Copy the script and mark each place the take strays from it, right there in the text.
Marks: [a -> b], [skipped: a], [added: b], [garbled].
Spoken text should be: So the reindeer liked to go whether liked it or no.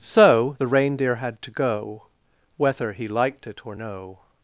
So the reindeer [liked -> had] to go whether [added: he] liked it or no.